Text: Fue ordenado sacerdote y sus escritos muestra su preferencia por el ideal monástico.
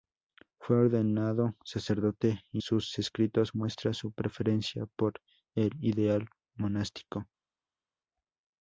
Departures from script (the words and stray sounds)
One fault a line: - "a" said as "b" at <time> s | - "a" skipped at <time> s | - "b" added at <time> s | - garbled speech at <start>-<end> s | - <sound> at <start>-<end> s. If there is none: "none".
none